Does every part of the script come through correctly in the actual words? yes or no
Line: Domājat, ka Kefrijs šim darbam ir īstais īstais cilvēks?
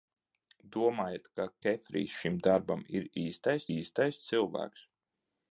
yes